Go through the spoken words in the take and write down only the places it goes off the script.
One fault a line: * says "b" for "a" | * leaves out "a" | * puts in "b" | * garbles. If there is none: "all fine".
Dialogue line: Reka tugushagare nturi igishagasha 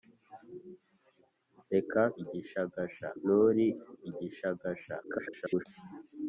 * says "igishagasha" for "tugushagare"
* garbles